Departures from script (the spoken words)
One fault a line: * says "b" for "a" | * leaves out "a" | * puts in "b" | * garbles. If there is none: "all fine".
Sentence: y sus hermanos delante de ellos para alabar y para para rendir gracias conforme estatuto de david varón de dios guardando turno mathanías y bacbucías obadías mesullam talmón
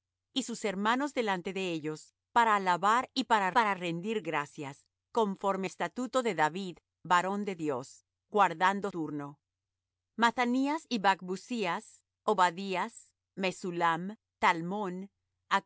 all fine